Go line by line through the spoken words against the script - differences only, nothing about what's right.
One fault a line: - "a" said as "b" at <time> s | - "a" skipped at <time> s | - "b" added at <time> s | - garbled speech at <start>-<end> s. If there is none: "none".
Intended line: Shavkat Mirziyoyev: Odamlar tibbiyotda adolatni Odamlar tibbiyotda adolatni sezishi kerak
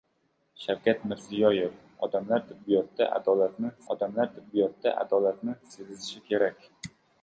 none